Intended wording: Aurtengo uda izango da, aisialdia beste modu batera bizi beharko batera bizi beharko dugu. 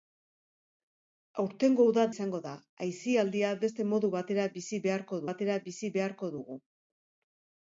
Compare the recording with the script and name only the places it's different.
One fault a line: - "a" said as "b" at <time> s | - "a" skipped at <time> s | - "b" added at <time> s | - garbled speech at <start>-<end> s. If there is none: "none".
none